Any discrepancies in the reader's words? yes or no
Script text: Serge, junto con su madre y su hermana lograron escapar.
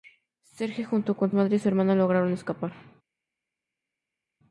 yes